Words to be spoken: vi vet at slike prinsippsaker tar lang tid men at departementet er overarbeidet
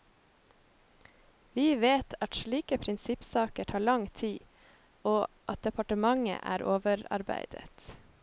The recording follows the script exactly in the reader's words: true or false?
false